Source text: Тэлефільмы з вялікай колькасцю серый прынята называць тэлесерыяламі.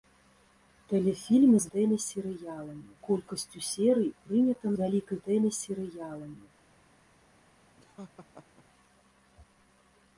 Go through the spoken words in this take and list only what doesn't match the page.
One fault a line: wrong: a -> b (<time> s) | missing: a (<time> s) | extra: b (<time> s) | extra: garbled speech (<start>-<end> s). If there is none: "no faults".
wrong: вялікай -> тэлесерыяламі (1.7 s)
wrong: называць -> вялікай (4.8 s)